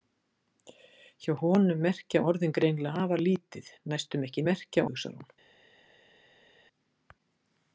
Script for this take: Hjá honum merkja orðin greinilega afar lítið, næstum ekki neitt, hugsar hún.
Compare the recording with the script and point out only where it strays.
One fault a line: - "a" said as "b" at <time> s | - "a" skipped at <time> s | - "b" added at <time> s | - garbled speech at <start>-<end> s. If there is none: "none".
- "neitt" said as "merkja" at 4.5 s